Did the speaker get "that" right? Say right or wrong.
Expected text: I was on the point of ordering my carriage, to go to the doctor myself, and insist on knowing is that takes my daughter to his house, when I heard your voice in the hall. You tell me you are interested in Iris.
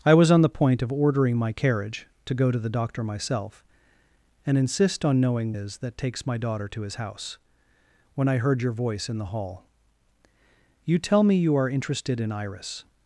right